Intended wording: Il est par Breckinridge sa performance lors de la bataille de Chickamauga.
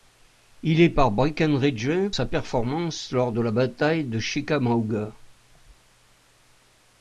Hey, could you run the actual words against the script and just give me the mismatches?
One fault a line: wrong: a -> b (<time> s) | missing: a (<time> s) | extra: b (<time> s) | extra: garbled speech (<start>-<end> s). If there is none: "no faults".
no faults